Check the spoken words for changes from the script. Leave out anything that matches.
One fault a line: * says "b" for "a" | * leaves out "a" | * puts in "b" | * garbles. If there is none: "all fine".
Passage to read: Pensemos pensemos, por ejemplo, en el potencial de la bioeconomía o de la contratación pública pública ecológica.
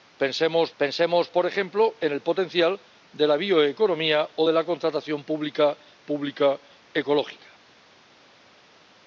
all fine